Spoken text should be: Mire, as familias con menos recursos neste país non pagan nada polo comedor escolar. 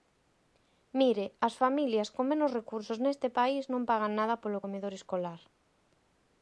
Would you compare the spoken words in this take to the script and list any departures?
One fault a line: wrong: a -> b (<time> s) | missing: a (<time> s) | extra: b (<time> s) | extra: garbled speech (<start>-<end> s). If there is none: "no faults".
no faults